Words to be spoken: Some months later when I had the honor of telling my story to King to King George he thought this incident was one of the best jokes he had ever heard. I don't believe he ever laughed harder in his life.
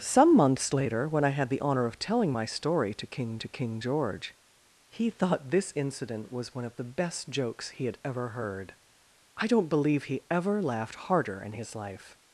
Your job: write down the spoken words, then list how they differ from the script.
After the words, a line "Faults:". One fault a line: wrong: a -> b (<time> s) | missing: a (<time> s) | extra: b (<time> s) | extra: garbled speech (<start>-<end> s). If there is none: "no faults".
Some months later when I had the honor of telling my story to King to King George he thought this incident was one of the best jokes he had ever heard. I don't believe he ever laughed harder in his life.
Faults:
no faults